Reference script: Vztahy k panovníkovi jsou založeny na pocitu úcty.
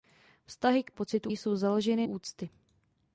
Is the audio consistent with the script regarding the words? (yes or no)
no